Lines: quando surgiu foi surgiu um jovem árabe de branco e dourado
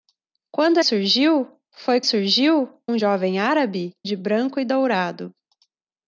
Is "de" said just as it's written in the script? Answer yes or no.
yes